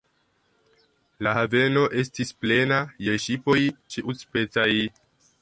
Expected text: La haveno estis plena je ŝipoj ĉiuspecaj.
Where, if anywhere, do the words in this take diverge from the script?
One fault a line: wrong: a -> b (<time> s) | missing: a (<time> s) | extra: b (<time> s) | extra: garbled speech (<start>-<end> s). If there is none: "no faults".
no faults